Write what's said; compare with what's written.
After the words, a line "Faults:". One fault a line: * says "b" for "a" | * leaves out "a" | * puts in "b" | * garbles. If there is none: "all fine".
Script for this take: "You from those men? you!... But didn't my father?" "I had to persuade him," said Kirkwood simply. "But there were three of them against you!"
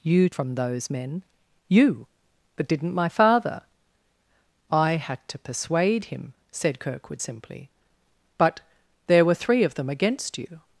"You from those men? you!... But didn't my father?" "I had to persuade him," said Kirkwood simply. "But there were three of them against you!"
Faults:
all fine